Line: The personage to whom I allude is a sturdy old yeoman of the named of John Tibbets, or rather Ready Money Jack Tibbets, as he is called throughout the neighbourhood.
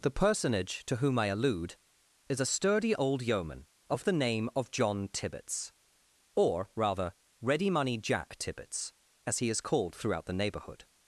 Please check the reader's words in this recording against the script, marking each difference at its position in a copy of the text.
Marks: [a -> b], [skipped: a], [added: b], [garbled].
The personage to whom I allude is a sturdy old yeoman of the [named -> name] of John Tibbets, or rather Ready Money Jack Tibbets, as he is called throughout the neighbourhood.